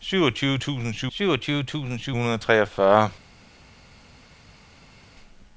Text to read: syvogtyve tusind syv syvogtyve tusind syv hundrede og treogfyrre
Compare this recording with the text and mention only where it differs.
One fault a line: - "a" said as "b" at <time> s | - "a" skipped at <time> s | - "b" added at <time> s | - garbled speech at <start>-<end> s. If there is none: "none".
none